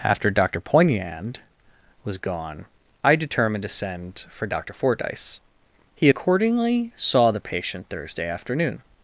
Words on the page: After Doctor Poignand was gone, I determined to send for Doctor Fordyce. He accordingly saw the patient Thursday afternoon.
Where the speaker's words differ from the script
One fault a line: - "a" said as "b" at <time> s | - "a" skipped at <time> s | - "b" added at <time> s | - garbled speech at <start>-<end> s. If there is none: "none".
none